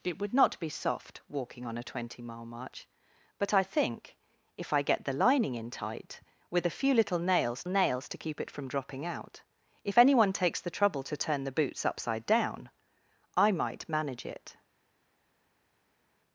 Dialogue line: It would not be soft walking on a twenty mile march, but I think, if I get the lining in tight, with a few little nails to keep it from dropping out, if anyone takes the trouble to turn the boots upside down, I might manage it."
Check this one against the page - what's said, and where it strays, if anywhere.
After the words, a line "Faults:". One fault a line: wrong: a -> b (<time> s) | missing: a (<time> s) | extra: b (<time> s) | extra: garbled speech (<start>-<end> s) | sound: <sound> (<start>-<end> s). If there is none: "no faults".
It would not be soft walking on a twenty mile march, but I think, if I get the lining in tight, with a few little nails nails to keep it from dropping out, if anyone takes the trouble to turn the boots upside down, I might manage it."
Faults:
extra: nails (7.7 s)